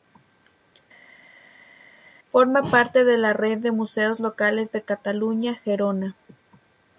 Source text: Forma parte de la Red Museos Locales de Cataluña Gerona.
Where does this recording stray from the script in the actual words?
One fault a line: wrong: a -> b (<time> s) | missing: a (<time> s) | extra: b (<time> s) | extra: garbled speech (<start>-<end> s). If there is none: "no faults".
extra: de (3.6 s)